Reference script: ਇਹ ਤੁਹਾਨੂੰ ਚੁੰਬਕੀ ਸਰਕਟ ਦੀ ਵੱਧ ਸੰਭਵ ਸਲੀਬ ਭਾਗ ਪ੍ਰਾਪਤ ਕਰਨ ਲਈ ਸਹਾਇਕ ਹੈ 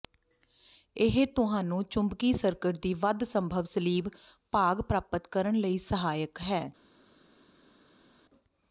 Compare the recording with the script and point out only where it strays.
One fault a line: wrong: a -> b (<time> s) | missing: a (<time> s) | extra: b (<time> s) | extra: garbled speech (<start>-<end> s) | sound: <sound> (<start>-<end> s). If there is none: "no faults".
no faults